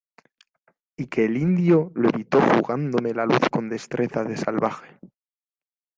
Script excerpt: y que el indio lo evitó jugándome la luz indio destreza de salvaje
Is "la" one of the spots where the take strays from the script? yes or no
no